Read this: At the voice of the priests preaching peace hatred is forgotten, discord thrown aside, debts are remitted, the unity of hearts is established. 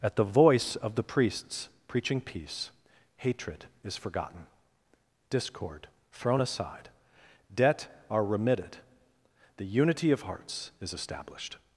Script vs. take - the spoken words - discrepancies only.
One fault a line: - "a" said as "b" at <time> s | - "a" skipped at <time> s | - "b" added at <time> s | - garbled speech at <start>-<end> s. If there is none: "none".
- "debts" said as "debt" at 7.5 s